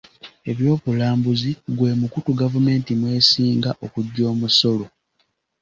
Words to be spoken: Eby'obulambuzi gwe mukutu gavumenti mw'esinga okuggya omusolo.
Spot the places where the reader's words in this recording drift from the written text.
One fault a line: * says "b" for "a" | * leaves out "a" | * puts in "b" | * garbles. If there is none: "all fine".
all fine